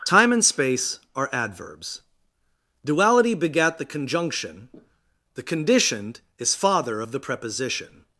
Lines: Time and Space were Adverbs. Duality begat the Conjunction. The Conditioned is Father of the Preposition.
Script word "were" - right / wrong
wrong